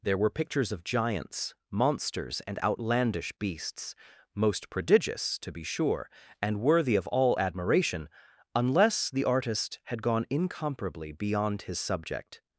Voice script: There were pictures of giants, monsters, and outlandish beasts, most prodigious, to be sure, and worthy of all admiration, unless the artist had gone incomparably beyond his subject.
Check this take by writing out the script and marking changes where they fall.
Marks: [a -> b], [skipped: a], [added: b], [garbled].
There were pictures of giants, monsters, and outlandish beasts, most prodigious, to be sure, and worthy of all admiration, unless the artist had gone incomparably beyond his subject.